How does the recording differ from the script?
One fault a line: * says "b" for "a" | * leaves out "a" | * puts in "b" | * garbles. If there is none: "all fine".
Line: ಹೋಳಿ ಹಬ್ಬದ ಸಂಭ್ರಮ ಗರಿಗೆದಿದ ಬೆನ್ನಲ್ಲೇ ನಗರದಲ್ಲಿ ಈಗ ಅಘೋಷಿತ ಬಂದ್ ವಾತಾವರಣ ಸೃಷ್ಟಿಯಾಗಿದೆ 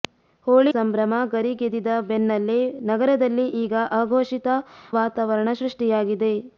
* leaves out "ಹಬ್ಬದ"
* leaves out "ಬಂದ್"